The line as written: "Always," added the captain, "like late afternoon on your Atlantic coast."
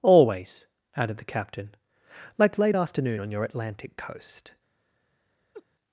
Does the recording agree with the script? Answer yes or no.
yes